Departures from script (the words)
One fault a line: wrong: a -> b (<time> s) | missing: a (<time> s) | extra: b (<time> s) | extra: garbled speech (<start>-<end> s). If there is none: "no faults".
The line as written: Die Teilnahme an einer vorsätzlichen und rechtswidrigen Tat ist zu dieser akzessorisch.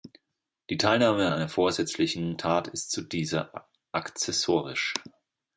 missing: und rechtswidrigen (2.4 s)